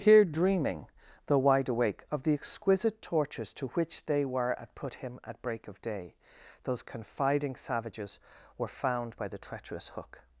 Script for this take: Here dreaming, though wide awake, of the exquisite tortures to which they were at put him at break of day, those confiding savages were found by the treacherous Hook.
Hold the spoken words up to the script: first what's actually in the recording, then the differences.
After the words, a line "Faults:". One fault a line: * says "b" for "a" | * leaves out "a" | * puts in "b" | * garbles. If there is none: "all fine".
Here dreaming, though wide awake, of the exquisite tortures to which they were at put him at break of day, those confiding savages were found by the treacherous Hook.
Faults:
all fine